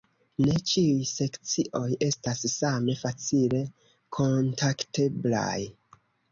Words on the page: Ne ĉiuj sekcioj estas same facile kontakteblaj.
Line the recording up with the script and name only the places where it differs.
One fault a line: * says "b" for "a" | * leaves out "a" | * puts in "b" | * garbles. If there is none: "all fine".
all fine